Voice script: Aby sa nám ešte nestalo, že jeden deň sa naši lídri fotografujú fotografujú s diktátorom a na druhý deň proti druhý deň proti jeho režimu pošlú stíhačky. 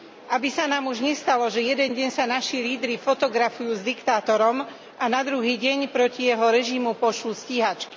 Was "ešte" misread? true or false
true